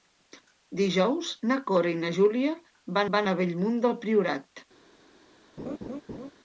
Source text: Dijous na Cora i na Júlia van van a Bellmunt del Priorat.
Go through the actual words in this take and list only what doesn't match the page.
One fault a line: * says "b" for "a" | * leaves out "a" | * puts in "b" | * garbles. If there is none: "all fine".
all fine